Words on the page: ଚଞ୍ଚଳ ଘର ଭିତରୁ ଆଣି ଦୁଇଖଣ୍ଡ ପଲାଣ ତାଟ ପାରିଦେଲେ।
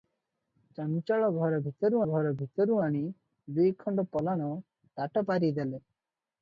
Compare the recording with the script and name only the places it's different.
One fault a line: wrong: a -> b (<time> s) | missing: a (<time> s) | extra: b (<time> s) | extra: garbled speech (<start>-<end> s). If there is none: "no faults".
extra: ଘର ଭିତରୁ (2.1 s)